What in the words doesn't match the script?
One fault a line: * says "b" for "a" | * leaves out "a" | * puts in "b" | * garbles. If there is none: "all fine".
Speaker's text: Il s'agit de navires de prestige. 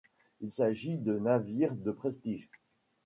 all fine